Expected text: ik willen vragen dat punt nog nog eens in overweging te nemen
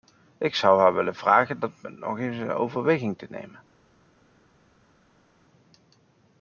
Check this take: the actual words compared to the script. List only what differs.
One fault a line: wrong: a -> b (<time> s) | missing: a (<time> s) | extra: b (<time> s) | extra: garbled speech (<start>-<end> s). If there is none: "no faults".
extra: zou haar (0.6 s)
missing: nog (2.2 s)